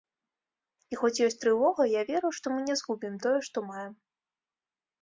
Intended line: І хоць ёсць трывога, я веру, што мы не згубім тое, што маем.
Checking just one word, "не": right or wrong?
right